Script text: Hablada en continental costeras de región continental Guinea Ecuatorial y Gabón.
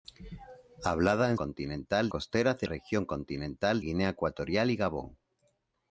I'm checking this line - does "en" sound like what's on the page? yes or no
yes